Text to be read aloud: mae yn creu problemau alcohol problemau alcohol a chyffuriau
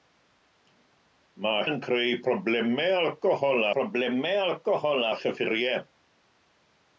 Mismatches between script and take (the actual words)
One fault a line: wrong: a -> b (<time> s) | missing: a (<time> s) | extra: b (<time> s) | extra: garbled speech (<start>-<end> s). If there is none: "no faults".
no faults